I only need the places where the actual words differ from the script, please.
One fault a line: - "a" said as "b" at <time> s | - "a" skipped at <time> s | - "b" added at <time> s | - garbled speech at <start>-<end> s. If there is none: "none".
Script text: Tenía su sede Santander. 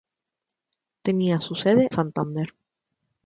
none